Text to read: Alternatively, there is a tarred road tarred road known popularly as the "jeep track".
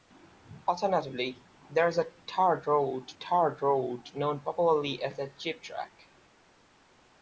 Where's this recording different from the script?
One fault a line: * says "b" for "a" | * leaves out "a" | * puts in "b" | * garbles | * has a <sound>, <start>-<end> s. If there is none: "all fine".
all fine